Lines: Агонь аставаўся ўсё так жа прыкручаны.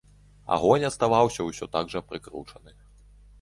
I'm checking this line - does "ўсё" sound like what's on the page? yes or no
yes